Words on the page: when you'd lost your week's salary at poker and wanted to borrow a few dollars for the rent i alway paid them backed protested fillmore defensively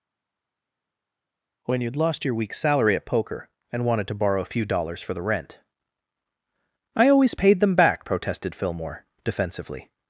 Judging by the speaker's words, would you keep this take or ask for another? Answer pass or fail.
fail